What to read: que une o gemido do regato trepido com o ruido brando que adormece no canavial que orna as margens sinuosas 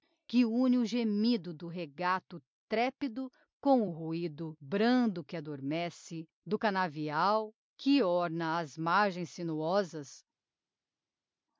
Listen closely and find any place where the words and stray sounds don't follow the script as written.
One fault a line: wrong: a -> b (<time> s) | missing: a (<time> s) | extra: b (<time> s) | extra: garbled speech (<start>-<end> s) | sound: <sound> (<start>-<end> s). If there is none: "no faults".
wrong: no -> do (6.5 s)